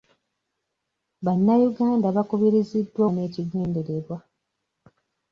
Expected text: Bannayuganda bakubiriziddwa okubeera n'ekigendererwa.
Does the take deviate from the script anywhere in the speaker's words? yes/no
yes